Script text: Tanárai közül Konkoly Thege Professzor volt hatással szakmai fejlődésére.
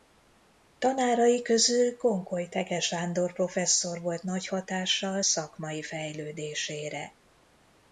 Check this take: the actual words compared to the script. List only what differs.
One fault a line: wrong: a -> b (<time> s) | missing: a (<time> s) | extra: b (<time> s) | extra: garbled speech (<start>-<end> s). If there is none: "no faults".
extra: Sándor (2.8 s)
extra: nagy (4.2 s)